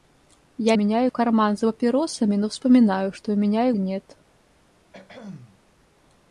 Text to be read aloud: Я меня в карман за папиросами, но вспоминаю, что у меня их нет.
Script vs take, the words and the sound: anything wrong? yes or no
yes